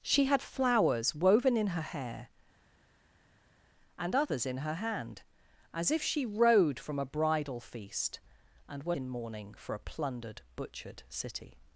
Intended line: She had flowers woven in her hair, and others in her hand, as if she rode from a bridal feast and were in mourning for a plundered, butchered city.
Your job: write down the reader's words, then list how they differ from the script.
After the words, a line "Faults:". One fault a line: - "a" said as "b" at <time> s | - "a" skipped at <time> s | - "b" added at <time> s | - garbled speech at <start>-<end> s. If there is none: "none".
She had flowers woven in her hair, and others in her hand, as if she rode from a bridal feast and were in mourning for a plundered, butchered city.
Faults:
none